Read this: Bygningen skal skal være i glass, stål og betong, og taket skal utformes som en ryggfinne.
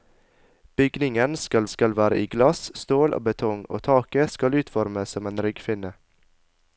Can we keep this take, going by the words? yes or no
yes